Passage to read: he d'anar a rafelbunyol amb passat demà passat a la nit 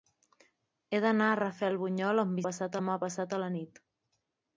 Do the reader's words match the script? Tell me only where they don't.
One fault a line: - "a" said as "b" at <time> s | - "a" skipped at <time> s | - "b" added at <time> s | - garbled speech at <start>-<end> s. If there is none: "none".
none